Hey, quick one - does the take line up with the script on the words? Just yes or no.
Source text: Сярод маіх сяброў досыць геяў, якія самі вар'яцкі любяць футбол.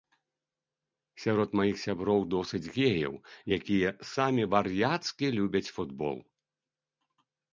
yes